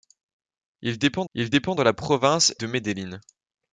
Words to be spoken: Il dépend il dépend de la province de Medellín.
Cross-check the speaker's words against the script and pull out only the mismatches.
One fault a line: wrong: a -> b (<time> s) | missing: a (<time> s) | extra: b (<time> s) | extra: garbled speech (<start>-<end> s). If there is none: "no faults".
no faults